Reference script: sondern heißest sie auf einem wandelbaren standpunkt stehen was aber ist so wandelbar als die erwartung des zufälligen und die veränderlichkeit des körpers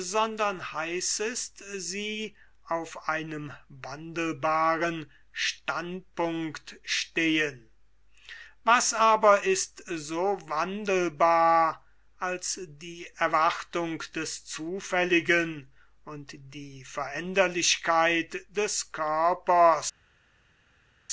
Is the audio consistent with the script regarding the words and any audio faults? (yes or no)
yes